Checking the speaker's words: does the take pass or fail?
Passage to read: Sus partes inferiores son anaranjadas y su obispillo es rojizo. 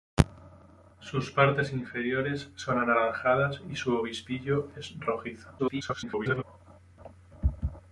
fail